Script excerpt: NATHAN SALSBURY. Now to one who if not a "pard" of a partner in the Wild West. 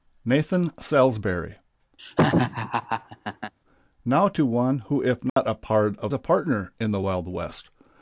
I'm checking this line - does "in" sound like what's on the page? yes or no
yes